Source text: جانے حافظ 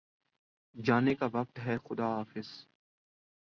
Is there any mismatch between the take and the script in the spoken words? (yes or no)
yes